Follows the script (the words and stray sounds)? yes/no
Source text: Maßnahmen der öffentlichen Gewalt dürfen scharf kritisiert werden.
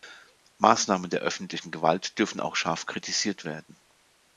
no